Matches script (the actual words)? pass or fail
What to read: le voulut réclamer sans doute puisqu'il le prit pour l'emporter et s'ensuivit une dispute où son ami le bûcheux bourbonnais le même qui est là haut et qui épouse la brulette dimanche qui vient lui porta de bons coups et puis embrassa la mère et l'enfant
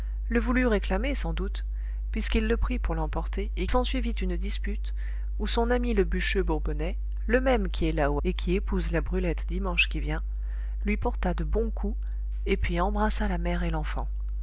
pass